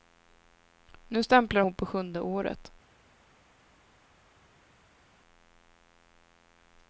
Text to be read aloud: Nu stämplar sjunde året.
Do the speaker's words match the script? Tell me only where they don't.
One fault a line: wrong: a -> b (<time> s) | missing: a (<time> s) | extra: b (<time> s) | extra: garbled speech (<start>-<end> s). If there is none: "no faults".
extra: hon på (1.6 s)